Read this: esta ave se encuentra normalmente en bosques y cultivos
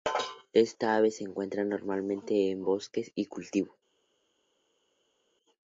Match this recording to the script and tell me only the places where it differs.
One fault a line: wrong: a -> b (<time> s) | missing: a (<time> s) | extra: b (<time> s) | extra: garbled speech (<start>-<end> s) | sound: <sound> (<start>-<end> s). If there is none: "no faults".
no faults